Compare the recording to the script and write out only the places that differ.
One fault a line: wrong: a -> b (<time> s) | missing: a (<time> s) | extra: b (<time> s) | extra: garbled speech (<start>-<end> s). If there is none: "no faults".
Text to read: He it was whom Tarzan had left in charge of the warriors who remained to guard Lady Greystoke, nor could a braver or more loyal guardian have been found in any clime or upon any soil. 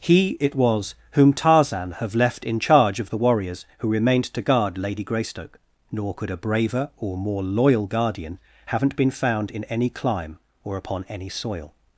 wrong: had -> have (2.0 s)
wrong: have -> haven't (8.7 s)